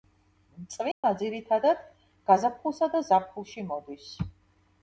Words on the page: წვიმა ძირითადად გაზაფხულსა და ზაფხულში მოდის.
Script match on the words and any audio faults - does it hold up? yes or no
no